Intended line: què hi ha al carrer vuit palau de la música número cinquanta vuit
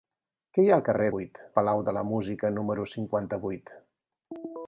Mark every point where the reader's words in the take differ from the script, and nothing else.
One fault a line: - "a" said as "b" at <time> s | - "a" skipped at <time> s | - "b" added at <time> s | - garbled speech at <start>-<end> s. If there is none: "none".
none